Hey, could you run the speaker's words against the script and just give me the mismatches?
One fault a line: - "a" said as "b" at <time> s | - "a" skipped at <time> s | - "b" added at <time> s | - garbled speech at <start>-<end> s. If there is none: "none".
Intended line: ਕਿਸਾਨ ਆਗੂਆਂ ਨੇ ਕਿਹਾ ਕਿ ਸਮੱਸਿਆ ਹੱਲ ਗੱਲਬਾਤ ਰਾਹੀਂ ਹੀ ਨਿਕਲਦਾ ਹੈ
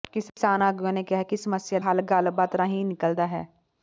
none